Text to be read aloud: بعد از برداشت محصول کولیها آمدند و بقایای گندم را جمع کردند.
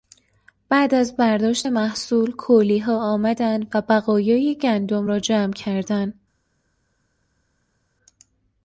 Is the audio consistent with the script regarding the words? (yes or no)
yes